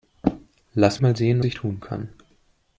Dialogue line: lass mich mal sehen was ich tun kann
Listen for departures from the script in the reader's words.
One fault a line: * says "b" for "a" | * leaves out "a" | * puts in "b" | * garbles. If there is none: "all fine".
* leaves out "mich"
* leaves out "was"